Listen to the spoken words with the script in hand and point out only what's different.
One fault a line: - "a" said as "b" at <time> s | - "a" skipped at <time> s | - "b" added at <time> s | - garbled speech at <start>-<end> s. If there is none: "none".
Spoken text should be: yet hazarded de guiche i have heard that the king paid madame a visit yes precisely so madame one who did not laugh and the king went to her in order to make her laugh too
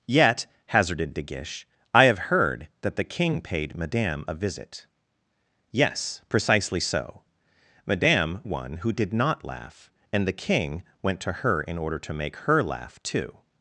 none